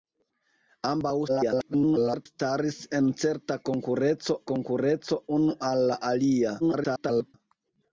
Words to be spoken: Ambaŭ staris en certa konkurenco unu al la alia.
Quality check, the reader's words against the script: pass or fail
fail